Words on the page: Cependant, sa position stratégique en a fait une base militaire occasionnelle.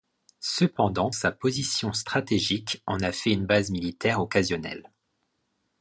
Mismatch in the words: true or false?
false